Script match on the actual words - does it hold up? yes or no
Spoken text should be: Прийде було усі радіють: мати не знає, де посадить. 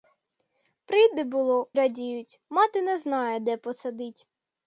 no